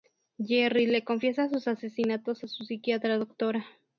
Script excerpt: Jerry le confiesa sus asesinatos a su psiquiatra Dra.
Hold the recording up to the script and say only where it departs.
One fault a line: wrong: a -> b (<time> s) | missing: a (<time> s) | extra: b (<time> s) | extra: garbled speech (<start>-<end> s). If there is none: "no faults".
no faults